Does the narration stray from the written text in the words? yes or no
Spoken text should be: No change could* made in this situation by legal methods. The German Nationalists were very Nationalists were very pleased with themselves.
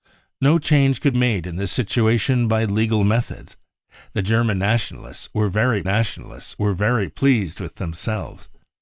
no